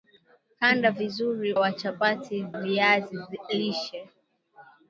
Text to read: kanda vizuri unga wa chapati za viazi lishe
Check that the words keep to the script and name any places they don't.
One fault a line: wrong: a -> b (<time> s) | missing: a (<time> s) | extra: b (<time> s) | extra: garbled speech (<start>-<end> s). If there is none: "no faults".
missing: unga (1.5 s)
missing: za (2.5 s)